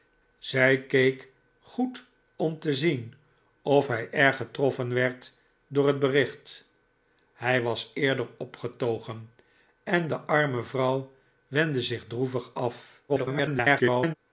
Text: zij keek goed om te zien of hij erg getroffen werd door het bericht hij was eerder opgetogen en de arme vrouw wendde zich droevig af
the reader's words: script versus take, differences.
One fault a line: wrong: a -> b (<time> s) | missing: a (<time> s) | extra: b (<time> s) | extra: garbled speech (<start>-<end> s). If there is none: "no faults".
extra: garbled speech (13.1-14.1 s)